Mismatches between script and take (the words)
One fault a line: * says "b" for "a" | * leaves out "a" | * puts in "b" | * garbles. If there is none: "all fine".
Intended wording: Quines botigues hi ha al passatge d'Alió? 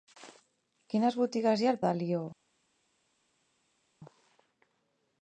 * leaves out "passatge"